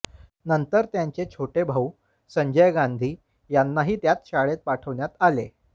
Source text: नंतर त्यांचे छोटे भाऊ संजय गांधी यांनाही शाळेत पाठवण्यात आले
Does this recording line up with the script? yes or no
no